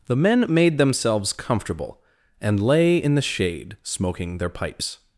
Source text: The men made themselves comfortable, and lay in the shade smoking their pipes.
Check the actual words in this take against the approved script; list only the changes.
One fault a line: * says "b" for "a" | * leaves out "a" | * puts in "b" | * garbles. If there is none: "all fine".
all fine